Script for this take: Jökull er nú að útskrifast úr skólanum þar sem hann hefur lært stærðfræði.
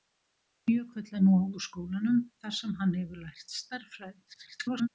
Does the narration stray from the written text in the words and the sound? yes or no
yes